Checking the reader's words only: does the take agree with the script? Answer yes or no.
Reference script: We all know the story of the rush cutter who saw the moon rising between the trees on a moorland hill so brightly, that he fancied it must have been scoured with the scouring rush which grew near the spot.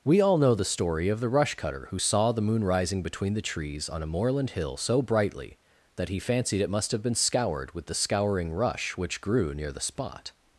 yes